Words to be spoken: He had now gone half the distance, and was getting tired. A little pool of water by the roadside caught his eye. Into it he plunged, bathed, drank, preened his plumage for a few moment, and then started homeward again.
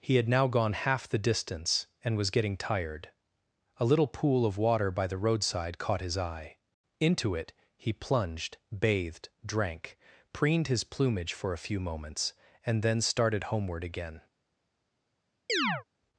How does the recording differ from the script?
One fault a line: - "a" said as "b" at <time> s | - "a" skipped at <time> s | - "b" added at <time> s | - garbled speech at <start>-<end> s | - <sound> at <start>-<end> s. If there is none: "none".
- "moment" said as "moments" at 11.8 s
- chirp at 15.5-15.8 s